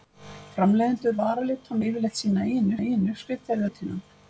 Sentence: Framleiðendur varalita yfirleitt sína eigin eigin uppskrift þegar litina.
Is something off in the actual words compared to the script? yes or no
no